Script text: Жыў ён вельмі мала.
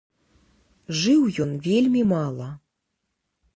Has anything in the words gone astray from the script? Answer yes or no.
no